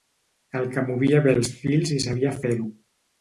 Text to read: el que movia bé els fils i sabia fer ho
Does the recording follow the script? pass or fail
pass